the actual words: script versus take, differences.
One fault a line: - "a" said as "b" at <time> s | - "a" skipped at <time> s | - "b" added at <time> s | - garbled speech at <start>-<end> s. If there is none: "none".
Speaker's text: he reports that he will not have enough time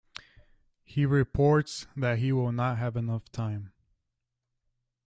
none